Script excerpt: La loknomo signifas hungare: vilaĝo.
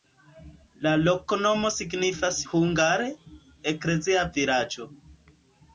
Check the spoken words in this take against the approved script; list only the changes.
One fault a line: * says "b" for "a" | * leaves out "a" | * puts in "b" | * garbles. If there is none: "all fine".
* puts in "eklezia"